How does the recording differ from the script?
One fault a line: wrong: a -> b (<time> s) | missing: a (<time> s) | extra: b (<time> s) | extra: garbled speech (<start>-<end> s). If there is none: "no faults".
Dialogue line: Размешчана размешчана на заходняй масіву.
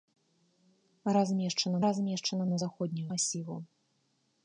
no faults